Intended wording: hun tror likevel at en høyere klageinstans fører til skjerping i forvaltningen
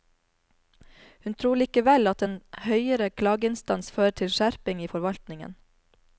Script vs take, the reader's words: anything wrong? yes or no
no